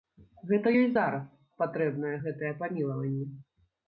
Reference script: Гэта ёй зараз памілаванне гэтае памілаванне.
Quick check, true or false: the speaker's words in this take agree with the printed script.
false